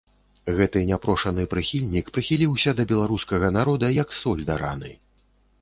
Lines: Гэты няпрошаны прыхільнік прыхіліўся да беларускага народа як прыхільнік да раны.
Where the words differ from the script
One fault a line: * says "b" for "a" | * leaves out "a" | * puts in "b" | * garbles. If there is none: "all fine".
* says "соль" for "прыхільнік"